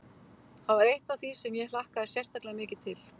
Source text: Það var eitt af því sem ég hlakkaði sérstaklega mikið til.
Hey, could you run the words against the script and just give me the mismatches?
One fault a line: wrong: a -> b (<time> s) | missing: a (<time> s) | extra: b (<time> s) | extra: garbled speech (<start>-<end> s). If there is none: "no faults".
no faults